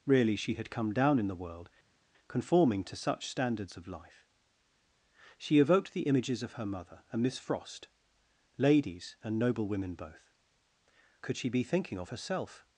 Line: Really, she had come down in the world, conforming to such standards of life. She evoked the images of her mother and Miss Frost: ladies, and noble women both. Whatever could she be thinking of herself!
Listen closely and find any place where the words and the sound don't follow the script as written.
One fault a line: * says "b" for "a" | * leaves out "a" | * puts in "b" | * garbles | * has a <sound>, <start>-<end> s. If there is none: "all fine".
* leaves out "Whatever"